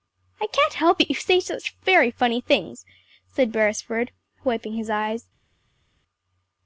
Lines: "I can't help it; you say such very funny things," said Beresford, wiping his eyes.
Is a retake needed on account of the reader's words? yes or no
no